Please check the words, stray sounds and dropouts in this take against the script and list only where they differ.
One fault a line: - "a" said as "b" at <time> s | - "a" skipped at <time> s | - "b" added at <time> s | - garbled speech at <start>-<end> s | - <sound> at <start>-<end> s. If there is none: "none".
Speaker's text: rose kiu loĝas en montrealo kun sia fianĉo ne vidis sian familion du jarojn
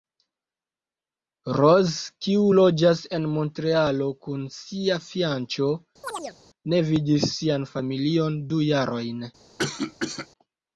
- chirp at 6.0-6.4 s
- cough at 9.6-10.3 s